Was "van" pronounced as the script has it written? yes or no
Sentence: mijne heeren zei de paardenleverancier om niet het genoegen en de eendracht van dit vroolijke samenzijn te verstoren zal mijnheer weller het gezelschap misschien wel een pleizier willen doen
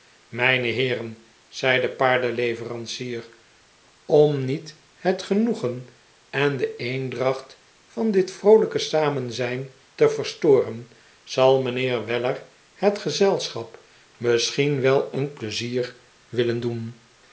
yes